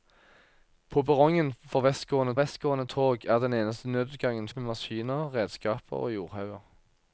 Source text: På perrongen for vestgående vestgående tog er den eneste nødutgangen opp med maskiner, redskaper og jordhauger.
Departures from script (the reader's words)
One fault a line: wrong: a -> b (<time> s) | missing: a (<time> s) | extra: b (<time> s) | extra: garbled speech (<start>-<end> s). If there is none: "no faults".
no faults